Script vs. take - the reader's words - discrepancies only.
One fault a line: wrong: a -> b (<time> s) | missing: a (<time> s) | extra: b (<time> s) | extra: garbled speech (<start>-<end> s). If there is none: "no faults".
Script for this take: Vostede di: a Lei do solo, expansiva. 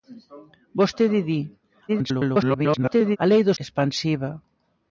extra: garbled speech (1.9-3.2 s)
missing: solo (3.5 s)